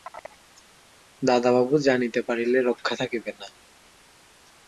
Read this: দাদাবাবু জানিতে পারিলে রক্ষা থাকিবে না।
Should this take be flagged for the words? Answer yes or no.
no